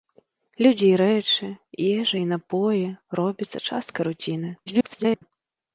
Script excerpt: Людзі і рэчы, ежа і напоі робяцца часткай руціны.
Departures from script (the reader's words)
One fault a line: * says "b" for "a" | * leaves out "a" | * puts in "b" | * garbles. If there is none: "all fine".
* garbles